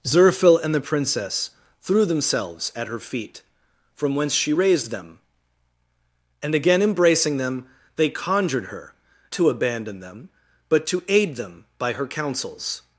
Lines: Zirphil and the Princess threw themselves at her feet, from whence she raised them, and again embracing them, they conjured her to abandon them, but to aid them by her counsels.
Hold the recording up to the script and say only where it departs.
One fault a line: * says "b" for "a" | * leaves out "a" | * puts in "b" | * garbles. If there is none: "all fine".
all fine